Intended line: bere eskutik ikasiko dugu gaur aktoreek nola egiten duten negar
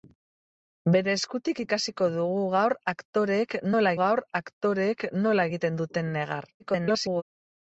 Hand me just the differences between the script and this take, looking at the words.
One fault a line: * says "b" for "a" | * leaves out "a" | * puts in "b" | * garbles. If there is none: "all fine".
* puts in "gaur aktoreek nola"
* garbles